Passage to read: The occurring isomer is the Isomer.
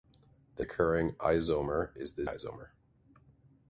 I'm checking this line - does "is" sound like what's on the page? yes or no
yes